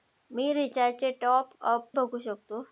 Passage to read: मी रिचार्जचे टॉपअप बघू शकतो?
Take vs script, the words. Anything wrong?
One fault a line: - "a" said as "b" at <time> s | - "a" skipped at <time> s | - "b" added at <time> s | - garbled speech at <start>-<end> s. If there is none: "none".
none